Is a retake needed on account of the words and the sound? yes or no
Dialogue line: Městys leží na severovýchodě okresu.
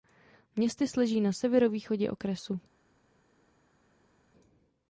no